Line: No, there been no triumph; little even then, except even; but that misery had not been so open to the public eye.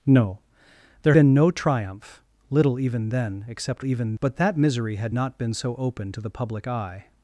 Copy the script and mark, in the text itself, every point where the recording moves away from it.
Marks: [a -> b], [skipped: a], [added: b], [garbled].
No, there been no triumph; little even then, except even; but that misery had not been so open to the public eye.